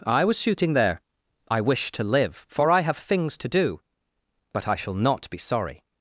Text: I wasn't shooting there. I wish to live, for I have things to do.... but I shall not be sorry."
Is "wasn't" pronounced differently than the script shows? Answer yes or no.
yes